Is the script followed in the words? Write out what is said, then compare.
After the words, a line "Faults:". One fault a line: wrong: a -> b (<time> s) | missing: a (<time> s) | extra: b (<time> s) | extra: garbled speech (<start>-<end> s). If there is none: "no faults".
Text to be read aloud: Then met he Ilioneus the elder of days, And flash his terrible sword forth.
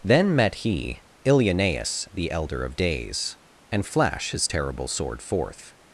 Then met he Ilioneus the elder of days, And flash his terrible sword forth.
Faults:
no faults